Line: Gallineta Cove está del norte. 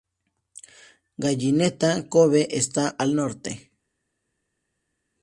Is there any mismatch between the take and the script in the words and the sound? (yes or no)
yes